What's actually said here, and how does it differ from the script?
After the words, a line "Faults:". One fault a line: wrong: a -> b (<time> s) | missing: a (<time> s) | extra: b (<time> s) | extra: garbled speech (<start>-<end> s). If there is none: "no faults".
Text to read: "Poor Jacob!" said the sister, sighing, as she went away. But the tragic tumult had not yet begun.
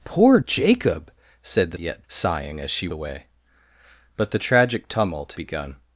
"Poor Jacob!" said the yet, sighing, as she away. But the tragic tumult begun.
Faults:
wrong: sister -> yet (1.8 s)
missing: went (2.9 s)
missing: had not yet (5.4 s)